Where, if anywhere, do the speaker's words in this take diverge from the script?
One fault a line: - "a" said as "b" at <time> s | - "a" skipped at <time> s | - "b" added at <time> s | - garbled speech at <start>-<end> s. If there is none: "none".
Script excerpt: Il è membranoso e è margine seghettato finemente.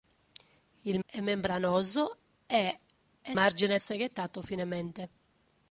none